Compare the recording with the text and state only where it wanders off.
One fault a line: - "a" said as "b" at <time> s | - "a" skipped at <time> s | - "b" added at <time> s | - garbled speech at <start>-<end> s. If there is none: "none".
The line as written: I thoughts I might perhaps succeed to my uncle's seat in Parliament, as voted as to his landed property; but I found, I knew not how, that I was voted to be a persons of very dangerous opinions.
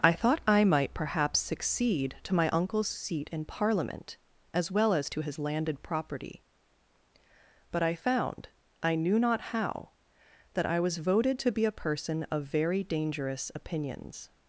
- "thoughts" said as "thought" at 0.1 s
- "voted" said as "well" at 4.7 s
- "persons" said as "person" at 11.7 s